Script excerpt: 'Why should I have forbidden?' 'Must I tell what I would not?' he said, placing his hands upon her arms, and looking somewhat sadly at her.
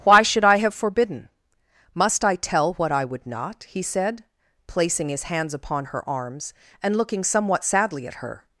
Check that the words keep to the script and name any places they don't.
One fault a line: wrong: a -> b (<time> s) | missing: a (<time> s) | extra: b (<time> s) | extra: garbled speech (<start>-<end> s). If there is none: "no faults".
no faults